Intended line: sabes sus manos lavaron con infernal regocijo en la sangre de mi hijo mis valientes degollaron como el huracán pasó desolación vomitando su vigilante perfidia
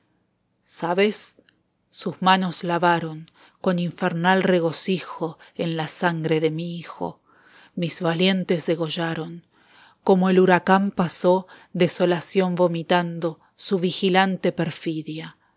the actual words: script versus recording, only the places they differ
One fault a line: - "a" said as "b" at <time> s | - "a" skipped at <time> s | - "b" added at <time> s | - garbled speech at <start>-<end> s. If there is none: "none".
none